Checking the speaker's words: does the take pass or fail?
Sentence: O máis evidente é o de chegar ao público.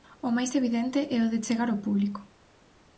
pass